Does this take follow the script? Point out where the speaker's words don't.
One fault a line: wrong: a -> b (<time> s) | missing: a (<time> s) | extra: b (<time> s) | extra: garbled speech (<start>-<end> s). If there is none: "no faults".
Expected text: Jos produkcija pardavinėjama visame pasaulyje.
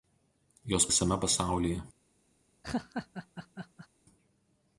missing: produkcija pardavinėjama (0.9 s)